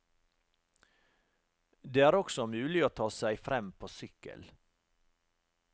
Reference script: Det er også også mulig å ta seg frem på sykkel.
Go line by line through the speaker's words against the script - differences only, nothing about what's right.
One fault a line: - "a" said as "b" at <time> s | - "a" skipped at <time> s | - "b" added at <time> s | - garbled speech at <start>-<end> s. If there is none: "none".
- "også" skipped at 2.5 s